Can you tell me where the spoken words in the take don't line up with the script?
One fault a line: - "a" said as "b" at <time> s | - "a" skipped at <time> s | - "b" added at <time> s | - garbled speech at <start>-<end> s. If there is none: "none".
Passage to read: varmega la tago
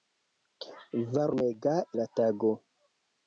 none